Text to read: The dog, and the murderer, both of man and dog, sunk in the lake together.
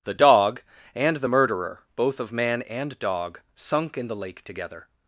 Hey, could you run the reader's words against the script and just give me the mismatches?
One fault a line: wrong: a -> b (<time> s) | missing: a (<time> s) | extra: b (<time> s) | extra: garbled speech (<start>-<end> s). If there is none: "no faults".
no faults